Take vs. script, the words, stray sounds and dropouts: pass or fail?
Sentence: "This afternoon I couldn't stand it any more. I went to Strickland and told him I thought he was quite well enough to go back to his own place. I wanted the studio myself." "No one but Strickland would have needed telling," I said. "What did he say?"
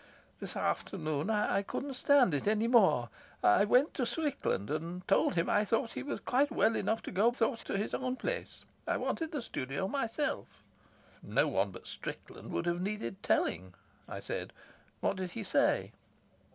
fail